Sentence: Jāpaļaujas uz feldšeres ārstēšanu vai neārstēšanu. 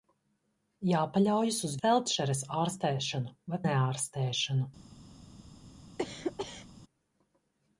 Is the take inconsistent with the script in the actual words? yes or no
no